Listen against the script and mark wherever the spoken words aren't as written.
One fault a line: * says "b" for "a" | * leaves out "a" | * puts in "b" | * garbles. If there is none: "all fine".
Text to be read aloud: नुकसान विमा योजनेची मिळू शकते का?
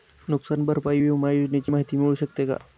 * puts in "भरपाई"
* puts in "माहिती"